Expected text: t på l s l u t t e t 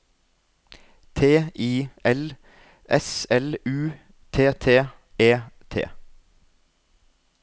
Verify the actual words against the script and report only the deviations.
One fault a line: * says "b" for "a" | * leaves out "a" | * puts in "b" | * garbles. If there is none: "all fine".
* says "i" for "på"